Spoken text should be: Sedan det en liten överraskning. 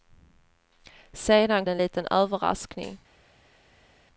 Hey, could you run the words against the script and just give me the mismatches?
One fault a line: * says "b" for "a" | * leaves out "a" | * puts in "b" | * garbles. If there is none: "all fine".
all fine